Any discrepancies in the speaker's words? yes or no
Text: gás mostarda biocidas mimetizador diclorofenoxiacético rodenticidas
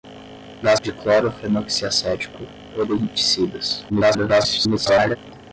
yes